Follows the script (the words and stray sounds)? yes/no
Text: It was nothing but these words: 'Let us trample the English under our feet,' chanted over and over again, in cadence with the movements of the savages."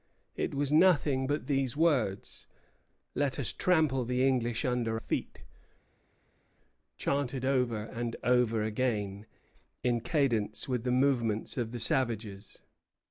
no